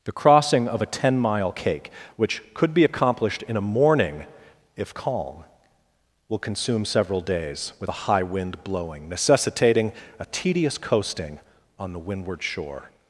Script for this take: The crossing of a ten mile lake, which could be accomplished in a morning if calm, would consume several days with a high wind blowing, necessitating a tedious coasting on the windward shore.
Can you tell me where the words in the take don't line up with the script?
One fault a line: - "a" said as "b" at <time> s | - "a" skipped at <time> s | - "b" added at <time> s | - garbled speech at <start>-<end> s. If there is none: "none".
- "lake" said as "cake" at 1.5 s
- "would" said as "will" at 6.3 s